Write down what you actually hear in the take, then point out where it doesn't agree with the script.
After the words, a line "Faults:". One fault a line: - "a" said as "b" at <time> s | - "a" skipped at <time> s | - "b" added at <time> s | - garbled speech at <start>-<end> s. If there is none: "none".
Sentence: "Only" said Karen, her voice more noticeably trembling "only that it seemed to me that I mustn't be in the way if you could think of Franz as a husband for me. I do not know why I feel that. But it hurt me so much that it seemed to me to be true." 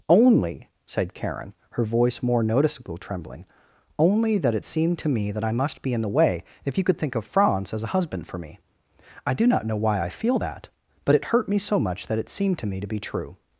"Only" said Karen, her voice more noticeably trembling "only that it seemed to me that I must be in the way if you could think of Franz as a husband for me. I do not know why I feel that. But it hurt me so much that it seemed to me to be true."
Faults:
- "mustn't" said as "must" at 5.5 s